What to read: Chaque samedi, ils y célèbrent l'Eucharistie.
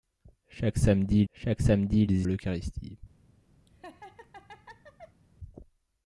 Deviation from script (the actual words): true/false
true